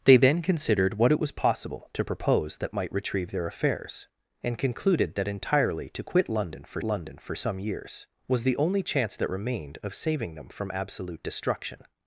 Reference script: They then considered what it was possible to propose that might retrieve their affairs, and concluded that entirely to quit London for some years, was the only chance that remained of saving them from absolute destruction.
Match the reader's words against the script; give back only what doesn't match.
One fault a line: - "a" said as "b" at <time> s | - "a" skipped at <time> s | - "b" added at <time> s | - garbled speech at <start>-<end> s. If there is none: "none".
- "London for" added at 6.8 s